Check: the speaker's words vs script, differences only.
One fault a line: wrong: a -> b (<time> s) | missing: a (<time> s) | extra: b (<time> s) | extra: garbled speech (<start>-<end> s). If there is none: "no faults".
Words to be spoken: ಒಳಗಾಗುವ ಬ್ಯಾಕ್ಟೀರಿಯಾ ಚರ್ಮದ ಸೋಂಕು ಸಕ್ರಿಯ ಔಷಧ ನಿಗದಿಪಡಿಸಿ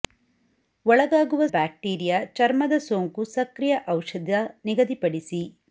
no faults